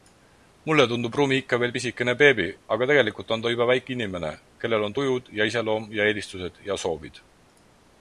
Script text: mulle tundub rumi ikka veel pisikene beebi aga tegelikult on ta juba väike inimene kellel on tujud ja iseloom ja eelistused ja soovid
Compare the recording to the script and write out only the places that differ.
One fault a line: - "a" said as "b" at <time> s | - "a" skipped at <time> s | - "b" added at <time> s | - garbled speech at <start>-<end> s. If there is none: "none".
none